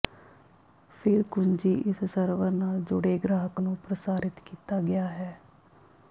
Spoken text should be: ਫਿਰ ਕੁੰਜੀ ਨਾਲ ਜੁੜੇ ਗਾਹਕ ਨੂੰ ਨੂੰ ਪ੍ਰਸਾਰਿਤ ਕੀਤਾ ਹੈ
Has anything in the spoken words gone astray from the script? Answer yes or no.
yes